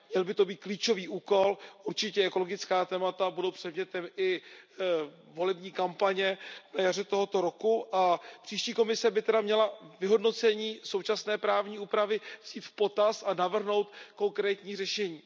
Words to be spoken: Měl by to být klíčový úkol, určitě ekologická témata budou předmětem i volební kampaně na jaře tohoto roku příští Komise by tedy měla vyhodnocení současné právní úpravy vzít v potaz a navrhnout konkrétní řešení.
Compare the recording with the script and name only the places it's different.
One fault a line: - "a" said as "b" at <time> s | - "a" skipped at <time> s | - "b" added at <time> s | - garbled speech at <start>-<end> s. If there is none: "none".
- "a" added at 8.0 s